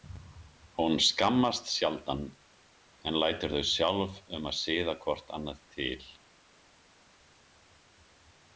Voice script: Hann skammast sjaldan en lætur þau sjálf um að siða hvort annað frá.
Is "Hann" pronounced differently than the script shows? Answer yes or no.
yes